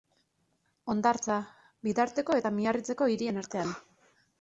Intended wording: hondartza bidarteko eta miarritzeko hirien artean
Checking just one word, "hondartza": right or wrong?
right